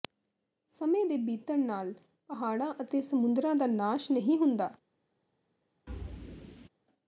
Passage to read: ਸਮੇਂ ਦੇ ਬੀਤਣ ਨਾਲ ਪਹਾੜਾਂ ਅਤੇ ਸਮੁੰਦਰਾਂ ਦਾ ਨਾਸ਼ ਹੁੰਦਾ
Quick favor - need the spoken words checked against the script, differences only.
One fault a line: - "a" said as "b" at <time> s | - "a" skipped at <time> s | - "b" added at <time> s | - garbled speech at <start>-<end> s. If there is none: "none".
- "ਨਹੀਂ" added at 4.1 s